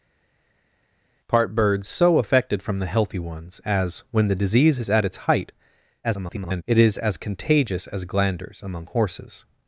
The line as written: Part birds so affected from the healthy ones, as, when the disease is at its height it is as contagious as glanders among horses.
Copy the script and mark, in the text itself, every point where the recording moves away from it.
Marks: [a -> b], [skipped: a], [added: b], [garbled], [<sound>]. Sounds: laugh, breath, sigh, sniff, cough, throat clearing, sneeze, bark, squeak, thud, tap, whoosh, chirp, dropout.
Part birds so affected from the healthy ones, as, when the disease is at its height [garbled] it is as contagious as glanders among horses.